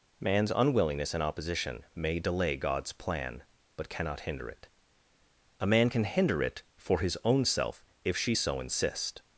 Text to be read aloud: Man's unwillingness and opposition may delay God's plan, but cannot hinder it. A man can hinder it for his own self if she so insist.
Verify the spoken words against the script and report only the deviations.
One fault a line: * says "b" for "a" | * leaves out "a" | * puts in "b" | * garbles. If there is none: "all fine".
all fine